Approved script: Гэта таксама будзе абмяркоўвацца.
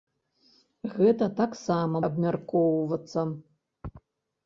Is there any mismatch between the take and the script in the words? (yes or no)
yes